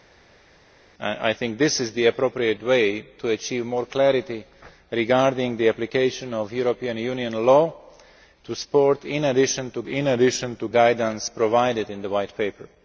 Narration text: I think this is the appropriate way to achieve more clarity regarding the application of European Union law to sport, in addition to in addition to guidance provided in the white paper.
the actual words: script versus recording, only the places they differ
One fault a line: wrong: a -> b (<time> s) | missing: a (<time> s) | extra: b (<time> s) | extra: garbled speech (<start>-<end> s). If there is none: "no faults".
no faults